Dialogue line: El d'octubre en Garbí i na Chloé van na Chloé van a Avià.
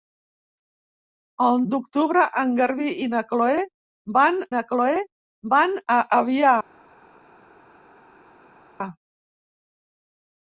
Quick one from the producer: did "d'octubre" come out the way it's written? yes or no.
yes